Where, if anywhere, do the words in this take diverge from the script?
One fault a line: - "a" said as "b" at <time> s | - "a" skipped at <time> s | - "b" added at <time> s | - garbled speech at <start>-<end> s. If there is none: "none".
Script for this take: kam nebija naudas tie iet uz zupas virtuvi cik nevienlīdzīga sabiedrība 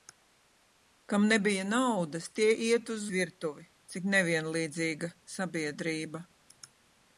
- "zupas" skipped at 3.0 s